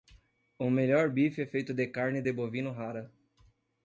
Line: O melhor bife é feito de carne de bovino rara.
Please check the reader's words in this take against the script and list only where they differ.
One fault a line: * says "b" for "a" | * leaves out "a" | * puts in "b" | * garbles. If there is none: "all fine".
all fine